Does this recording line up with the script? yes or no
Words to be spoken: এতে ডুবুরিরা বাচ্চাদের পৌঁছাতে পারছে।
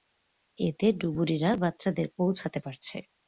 yes